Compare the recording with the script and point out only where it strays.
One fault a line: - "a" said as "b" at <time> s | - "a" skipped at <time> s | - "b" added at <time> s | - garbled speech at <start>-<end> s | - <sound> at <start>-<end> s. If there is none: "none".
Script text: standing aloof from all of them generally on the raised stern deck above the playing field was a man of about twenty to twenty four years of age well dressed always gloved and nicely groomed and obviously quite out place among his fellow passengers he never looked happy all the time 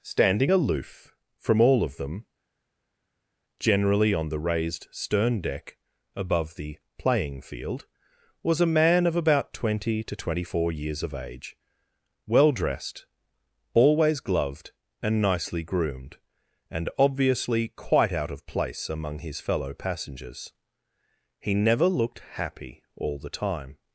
- "of" added at 18.3 s